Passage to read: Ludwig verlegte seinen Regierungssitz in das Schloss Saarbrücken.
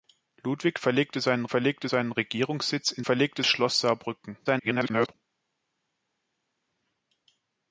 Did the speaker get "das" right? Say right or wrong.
wrong